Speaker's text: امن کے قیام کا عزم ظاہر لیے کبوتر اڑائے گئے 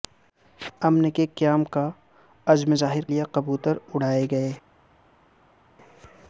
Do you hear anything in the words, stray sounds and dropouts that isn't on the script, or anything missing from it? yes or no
no